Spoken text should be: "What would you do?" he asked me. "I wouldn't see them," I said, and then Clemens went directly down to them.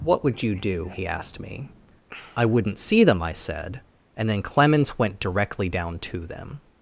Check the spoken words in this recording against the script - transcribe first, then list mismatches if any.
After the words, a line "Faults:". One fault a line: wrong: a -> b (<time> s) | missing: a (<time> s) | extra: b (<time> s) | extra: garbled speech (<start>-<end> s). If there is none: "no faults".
"What would you do?" he asked me. "I wouldn't see them," I said, and then Clemens went directly down to them.
Faults:
no faults